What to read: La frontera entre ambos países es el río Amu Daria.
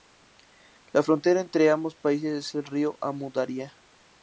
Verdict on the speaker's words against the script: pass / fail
pass